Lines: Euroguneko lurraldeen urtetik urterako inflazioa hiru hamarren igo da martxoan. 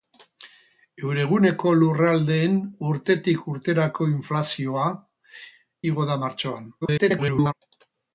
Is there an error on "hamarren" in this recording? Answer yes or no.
yes